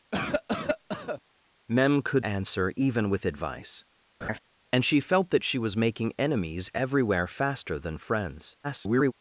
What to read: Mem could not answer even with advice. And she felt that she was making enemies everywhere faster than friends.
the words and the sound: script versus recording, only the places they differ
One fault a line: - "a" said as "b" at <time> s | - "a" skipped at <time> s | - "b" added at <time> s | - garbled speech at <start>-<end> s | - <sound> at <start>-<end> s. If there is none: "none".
- cough at 0.1-1.2 s
- "not" skipped at 2.2 s
- laugh at 4.2-4.4 s
- garbled speech at 8.6-9.1 s